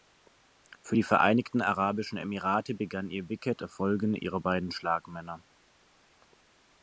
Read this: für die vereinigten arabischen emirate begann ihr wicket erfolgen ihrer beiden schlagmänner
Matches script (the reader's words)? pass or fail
pass